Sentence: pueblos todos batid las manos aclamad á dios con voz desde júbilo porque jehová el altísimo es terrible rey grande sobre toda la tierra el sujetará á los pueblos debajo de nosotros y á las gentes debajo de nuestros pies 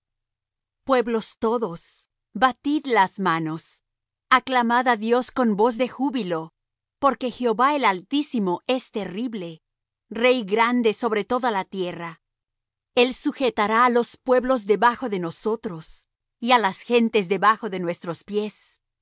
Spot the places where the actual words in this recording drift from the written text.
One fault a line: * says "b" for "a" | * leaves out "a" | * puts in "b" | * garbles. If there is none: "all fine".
* says "de" for "desde"